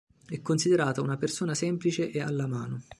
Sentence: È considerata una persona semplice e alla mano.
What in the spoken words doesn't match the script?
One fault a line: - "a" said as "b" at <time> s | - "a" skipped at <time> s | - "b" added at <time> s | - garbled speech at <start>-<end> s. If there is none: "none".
none